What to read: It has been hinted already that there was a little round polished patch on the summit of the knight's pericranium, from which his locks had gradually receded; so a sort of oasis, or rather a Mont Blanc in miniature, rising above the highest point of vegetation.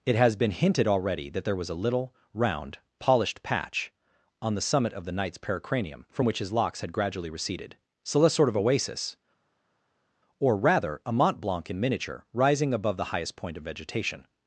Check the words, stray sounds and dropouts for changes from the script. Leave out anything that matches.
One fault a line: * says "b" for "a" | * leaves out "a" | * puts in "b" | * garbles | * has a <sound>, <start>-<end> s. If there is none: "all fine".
all fine